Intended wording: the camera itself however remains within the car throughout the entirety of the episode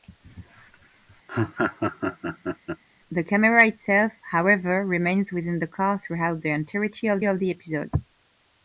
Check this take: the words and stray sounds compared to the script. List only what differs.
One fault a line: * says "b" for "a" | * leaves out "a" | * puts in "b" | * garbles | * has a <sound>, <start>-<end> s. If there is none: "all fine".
* has a laugh, 1.3-2.8 s
* puts in "of"